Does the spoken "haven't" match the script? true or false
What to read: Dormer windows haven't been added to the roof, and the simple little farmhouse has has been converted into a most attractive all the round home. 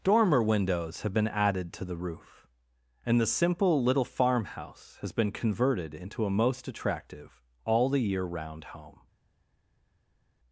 false